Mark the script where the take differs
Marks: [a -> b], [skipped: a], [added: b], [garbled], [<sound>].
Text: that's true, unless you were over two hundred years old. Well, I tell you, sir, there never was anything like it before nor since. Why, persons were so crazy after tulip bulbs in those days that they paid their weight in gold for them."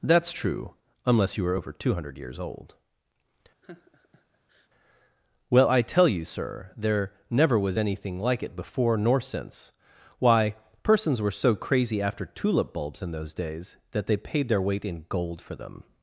that's true, unless you were over two hundred years old. [laugh] Well, I tell you, sir, there never was anything like it before nor since. Why, persons were so crazy after tulip bulbs in those days that they paid their weight in gold for them."